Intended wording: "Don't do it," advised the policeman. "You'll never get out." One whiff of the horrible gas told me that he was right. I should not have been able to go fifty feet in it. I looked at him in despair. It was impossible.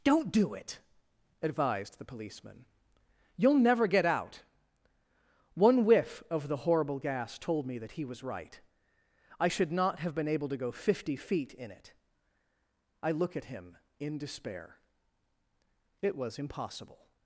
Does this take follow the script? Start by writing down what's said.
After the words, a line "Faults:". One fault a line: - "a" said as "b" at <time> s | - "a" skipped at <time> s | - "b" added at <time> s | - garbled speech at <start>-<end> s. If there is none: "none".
"Don't do it," advised the policeman. "You'll never get out." One whiff of the horrible gas told me that he was right. I should not have been able to go fifty feet in it. I look at him in despair. It was impossible.
Faults:
- "looked" said as "look" at 13.1 s